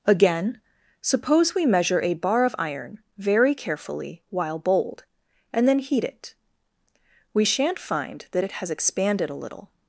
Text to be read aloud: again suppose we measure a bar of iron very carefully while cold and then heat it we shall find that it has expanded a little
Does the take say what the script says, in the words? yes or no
no